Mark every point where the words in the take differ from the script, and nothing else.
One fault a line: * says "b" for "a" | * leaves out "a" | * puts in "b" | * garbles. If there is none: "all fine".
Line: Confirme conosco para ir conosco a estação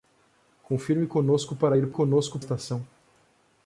all fine